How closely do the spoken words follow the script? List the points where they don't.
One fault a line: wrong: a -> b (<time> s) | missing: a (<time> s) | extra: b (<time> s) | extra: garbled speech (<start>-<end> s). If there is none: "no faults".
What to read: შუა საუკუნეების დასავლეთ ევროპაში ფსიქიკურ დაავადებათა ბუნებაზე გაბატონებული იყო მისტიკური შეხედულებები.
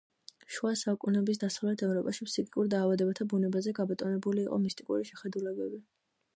no faults